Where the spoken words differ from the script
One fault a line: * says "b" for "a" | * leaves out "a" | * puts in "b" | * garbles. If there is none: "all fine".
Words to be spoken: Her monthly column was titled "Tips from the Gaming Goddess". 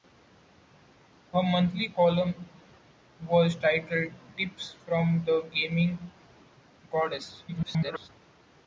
* garbles